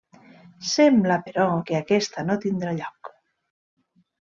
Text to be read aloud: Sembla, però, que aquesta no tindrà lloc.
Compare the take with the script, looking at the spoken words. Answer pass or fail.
pass